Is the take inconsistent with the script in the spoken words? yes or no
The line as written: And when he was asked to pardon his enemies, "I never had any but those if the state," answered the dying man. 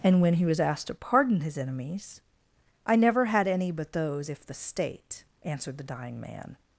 no